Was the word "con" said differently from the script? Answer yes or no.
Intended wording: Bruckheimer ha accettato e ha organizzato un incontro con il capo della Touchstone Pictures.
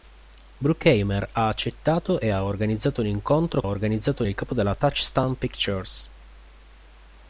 yes